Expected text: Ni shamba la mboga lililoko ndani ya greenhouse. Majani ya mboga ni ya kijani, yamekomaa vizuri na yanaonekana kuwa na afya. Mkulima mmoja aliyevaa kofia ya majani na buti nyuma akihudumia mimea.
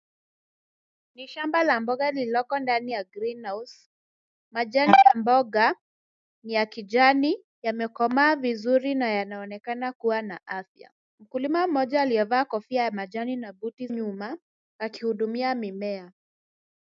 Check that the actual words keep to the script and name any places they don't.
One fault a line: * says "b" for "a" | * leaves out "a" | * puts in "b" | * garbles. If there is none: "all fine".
all fine